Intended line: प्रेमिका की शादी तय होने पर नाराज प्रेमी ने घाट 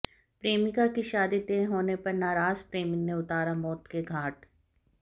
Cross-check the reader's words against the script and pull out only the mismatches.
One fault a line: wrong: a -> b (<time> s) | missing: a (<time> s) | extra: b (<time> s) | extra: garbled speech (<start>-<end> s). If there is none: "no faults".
extra: उतारा मौत के (3.1 s)